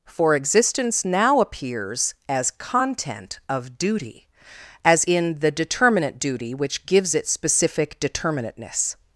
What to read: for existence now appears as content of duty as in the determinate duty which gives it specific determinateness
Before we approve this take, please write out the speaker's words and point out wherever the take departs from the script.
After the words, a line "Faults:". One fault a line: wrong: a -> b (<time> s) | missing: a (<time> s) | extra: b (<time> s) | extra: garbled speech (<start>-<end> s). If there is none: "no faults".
for existence now appears as content of duty as in the determinate duty which gives it specific determinateness
Faults:
no faults